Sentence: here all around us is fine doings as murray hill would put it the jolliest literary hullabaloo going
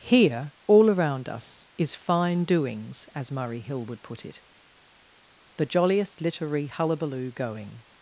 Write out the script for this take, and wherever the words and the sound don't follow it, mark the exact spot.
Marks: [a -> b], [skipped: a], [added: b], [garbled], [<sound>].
here all around us is fine doings as murray hill would put it the jolliest literary hullabaloo going